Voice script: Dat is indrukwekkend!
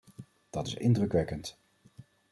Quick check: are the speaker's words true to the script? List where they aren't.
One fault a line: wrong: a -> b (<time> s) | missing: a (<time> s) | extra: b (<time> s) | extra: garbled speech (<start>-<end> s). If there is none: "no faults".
no faults